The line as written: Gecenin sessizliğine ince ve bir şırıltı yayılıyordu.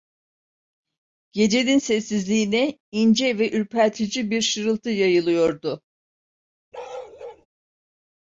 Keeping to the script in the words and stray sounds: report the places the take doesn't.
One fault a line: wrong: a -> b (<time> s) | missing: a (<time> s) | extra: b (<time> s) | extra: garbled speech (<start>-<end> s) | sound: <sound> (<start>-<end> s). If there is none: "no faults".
extra: ürpertici (3.5 s)
sound: bark (6.7-7.5 s)